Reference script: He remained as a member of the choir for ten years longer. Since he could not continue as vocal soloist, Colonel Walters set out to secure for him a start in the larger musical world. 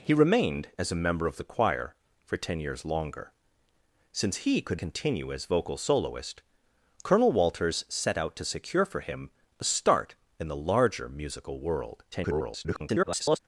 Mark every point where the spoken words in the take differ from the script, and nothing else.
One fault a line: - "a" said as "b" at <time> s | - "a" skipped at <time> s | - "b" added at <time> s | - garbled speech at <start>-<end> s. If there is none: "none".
- "not" skipped at 4.8 s
- garbled speech at 12.1-13.4 s